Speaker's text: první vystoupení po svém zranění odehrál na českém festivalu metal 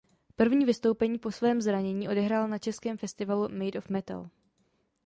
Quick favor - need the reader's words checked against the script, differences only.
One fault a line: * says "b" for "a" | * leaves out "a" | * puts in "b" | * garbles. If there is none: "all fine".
* puts in "made of"